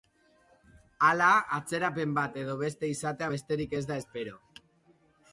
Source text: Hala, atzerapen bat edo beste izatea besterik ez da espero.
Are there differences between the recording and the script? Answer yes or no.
no